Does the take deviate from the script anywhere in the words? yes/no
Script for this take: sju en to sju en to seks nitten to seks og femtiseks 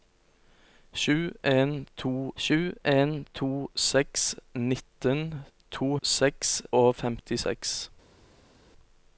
no